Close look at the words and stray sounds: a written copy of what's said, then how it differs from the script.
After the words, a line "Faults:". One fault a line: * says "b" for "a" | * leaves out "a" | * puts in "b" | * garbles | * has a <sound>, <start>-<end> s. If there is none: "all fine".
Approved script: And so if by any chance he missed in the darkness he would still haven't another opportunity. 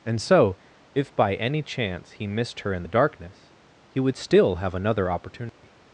And so if by any chance he missed her in the darkness he would still have another opportunity.
Faults:
* puts in "her"
* says "have" for "haven't"
* has a dropout, 5.5-5.6 s